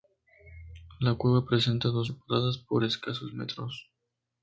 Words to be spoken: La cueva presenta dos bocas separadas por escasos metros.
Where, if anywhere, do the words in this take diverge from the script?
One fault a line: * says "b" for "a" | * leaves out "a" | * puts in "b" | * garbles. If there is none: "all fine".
* leaves out "bocas"